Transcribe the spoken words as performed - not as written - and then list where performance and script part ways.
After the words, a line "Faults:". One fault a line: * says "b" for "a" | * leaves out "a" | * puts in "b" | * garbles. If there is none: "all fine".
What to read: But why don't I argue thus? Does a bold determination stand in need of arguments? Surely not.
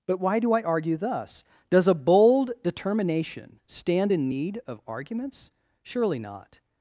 But why do I argue thus? Does a bold determination stand in need of arguments? Surely not.
Faults:
* says "do" for "don't"